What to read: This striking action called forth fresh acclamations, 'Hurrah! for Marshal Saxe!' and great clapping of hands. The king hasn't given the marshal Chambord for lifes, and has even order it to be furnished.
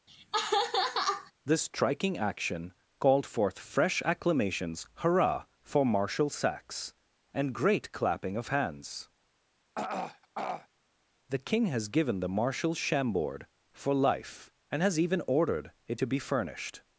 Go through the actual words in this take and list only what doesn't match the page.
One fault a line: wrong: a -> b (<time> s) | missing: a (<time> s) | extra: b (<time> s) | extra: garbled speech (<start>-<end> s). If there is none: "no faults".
wrong: hasn't -> has (11.7 s)
wrong: lifes -> life (13.9 s)
wrong: order -> ordered (15.3 s)